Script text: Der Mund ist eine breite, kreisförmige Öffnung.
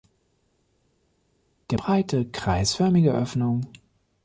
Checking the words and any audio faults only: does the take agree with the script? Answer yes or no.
no